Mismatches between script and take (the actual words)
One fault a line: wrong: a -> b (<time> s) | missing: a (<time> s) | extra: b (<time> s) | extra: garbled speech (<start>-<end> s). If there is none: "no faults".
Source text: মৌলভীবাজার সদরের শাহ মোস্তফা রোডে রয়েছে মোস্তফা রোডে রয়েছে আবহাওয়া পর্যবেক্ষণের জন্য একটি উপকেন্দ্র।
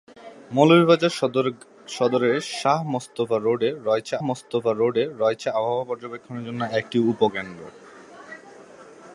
no faults